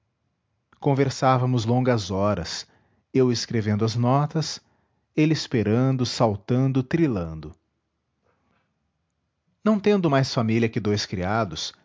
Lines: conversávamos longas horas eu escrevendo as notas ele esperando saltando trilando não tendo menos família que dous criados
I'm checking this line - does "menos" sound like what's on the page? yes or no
no